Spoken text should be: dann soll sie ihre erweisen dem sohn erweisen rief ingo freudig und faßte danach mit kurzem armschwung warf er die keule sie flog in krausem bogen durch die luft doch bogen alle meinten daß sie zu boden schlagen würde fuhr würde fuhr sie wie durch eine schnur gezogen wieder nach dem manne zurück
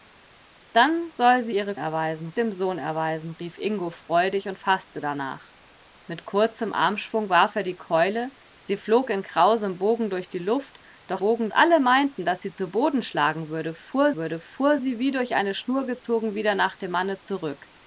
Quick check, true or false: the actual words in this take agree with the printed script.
true